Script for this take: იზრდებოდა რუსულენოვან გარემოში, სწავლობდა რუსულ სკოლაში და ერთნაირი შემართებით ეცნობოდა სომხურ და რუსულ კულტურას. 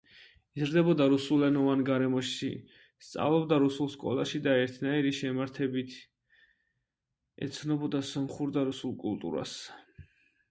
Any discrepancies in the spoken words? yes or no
no